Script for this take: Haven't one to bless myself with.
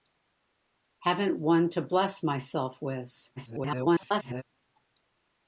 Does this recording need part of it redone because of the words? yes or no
yes